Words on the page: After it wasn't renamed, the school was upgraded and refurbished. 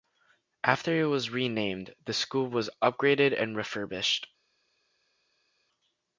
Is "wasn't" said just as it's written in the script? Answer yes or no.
no